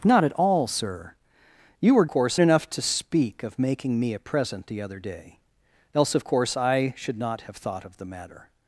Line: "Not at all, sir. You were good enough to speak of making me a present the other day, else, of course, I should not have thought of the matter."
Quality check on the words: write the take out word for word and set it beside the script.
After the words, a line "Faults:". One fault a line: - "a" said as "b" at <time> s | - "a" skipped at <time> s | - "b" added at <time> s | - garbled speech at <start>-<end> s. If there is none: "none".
"Not at all, sir. You were course enough to speak of making me a present the other day, else, of course, I should not have thought of the matter."
Faults:
- "good" said as "course" at 2.1 s